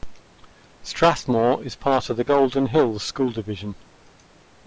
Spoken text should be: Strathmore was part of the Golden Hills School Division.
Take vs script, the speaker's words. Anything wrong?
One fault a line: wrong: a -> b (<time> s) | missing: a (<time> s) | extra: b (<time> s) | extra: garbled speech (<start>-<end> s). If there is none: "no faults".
wrong: was -> is (1.6 s)